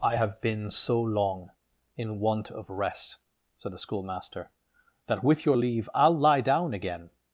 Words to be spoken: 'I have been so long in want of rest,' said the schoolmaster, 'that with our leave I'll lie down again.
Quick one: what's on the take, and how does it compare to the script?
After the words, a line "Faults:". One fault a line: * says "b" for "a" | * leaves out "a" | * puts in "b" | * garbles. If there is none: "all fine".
'I have been so long in want of rest,' said the schoolmaster, 'that with your leave I'll lie down again.
Faults:
* says "your" for "our"